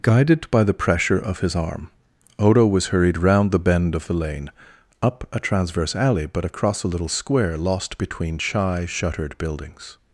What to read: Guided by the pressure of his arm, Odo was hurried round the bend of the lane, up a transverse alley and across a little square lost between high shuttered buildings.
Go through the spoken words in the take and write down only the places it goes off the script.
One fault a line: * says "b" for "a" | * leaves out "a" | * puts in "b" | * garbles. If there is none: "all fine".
* says "but" for "and"
* says "shy" for "high"